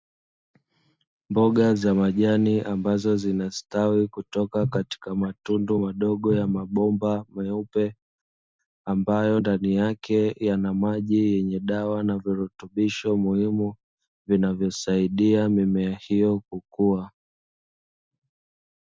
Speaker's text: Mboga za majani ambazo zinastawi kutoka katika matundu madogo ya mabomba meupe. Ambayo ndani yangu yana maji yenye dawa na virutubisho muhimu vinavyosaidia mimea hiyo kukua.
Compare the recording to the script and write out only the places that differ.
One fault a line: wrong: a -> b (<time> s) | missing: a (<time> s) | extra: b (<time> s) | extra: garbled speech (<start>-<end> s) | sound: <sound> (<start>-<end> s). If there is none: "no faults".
wrong: yangu -> yake (9.7 s)